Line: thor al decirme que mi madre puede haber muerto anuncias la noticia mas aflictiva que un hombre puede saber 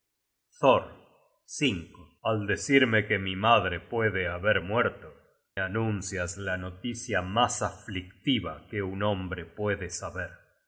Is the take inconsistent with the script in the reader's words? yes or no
no